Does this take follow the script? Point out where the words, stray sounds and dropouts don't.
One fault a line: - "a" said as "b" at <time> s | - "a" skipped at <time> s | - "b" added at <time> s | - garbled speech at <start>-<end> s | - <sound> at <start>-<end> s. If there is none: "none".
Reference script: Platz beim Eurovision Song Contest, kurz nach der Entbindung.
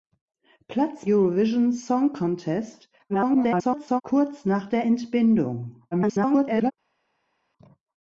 - "beim" skipped at 1.1 s
- garbled speech at 3.1-4.0 s
- garbled speech at 5.9-6.7 s